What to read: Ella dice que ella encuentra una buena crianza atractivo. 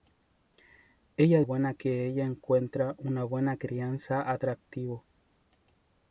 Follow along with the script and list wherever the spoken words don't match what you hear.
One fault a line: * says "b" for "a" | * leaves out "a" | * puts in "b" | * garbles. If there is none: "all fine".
* says "buena" for "dice"